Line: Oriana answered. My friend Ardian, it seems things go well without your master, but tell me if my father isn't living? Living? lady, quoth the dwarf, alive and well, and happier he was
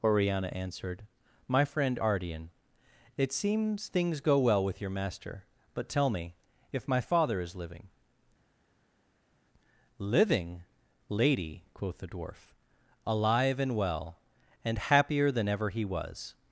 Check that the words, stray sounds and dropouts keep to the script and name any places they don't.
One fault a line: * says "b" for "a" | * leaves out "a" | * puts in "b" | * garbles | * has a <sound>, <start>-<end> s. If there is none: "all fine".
* says "with" for "without"
* says "is" for "isn't"
* puts in "than ever"